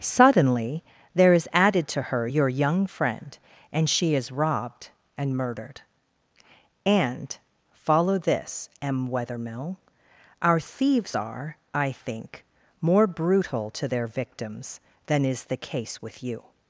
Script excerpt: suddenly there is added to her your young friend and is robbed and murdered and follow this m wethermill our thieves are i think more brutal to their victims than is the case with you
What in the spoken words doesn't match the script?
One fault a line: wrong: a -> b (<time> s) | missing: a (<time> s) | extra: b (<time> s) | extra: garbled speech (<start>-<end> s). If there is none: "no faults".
extra: she (3.9 s)